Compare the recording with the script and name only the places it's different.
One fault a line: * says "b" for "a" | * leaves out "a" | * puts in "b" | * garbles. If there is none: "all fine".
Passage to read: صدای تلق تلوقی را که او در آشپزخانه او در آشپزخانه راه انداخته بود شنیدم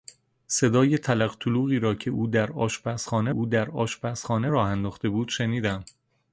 all fine